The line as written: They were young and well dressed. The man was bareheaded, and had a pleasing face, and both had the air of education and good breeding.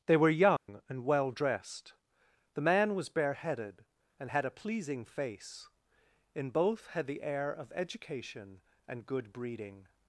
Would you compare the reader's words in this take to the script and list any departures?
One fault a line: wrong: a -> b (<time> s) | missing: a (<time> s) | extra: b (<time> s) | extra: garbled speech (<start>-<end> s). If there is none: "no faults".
wrong: and -> in (6.3 s)